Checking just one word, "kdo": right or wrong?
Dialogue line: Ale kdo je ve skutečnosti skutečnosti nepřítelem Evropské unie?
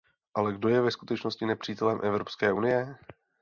right